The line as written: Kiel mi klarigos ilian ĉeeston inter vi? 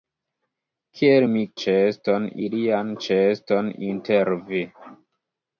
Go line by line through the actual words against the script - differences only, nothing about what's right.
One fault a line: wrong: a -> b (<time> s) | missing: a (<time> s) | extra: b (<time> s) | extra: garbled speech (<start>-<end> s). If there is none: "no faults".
wrong: klarigos -> ĉeeston (1.6 s)